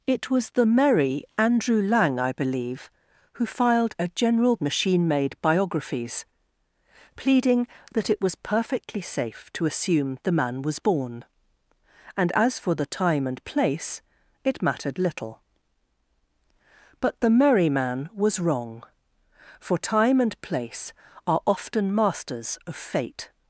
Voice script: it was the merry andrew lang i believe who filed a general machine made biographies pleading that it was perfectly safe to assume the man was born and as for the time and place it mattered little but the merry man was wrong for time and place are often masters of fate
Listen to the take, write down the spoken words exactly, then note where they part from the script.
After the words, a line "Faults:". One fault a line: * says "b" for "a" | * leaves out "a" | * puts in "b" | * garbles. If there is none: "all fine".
it was the merry andrew lang i believe who filed a general machine made biographies pleading that it was perfectly safe to assume the man was born and as for the time and place it mattered little but the merry man was wrong for time and place are often masters of fate
Faults:
all fine